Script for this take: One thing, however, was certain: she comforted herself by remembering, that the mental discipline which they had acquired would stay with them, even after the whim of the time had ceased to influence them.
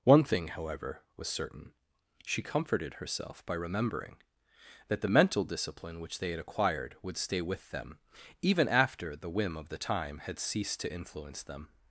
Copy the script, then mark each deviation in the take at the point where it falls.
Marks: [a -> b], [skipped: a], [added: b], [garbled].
One thing, however, was certain: she comforted herself by remembering, that the mental discipline which they had acquired would stay with them, even after the whim of the time had ceased to influence them.